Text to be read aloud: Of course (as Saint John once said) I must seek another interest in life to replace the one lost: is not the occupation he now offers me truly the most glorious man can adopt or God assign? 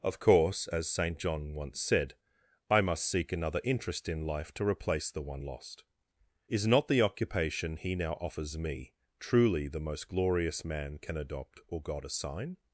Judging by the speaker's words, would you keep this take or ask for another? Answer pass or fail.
pass